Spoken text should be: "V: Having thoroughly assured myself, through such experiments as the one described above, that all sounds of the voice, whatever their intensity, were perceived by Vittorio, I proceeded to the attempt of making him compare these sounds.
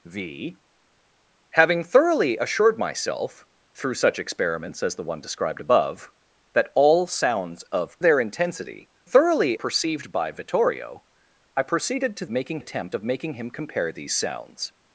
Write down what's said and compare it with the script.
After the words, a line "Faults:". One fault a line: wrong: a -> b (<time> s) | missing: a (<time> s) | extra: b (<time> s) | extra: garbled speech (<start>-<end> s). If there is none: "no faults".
"V: Having thoroughly assured myself, through such experiments as the one described above, that all sounds of their intensity, thoroughly perceived by Vittorio, I proceeded to making attempt of making him compare these sounds.
Faults:
missing: the voice whatever (8.0 s)
wrong: were -> thoroughly (9.0 s)
wrong: the -> making (12.3 s)